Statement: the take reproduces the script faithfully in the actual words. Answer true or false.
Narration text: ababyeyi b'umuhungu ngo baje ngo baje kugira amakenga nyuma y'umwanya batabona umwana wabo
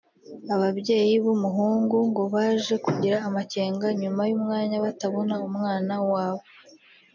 false